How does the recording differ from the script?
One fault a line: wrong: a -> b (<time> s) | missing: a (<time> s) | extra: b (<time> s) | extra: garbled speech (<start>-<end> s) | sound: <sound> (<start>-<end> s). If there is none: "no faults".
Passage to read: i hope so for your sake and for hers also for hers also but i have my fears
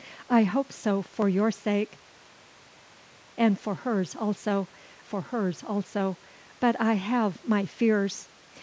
no faults